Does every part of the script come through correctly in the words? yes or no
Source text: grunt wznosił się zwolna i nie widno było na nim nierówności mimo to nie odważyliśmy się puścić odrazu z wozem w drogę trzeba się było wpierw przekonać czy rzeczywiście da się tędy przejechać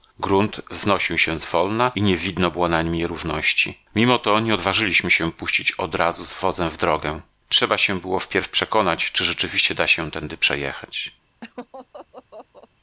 yes